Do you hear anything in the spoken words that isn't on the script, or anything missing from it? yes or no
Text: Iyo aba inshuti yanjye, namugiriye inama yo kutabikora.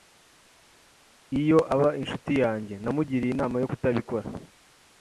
no